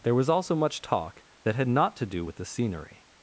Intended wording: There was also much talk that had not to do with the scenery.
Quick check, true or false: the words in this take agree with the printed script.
true